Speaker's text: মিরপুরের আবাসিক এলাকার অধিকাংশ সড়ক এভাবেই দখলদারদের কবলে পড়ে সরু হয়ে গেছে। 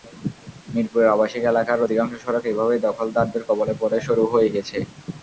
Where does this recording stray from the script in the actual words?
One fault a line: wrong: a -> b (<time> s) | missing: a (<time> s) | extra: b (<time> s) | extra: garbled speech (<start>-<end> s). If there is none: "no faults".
no faults